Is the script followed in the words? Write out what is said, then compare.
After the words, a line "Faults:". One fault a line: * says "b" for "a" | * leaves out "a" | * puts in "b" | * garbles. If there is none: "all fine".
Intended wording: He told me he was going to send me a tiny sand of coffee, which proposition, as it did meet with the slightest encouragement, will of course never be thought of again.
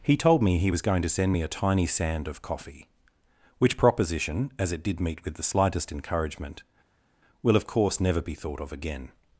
He told me he was going to send me a tiny sand of coffee, which proposition, as it did meet with the slightest encouragement, will of course never be thought of again.
Faults:
all fine